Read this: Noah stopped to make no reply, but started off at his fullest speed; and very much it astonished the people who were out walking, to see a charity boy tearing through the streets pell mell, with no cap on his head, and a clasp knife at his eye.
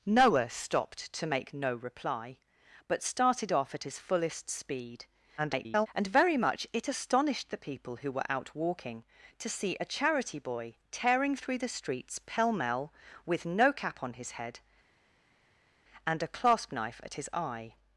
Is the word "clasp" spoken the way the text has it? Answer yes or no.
yes